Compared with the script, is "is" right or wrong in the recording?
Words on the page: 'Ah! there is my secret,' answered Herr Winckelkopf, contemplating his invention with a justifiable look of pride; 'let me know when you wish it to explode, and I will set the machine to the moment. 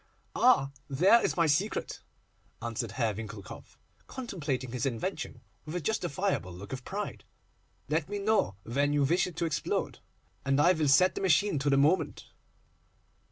right